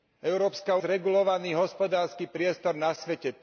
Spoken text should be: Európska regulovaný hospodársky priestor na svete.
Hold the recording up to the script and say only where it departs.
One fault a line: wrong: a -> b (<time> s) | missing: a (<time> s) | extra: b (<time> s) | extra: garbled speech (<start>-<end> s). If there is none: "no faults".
no faults